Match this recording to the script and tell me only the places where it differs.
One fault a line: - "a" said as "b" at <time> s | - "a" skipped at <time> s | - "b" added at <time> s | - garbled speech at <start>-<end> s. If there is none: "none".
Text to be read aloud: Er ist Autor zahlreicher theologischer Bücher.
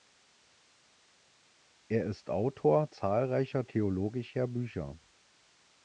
none